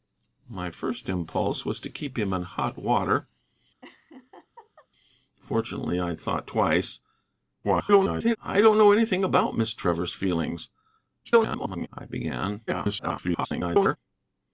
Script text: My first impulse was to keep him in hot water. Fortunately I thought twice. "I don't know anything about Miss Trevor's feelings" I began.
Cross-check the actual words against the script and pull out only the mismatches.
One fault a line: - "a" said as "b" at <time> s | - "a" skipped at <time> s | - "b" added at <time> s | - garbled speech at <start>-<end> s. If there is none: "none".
- garbled speech at 7.6-8.4 s
- garbled speech at 11.2-11.9 s
- garbled speech at 12.7-14.0 s